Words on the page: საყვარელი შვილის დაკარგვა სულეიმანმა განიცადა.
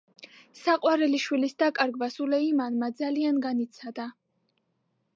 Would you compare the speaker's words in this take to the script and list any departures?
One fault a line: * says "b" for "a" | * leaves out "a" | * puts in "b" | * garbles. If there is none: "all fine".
* puts in "ძალიან"